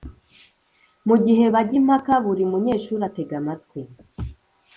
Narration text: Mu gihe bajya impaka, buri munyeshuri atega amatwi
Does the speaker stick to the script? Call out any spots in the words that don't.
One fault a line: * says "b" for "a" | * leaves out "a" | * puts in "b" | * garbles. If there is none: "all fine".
all fine